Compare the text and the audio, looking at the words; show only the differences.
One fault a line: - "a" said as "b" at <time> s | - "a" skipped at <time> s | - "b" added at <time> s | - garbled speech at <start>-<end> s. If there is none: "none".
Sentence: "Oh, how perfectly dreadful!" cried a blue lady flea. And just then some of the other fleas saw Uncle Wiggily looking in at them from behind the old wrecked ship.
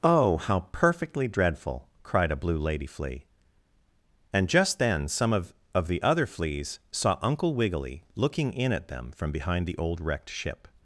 - "of" added at 5.8 s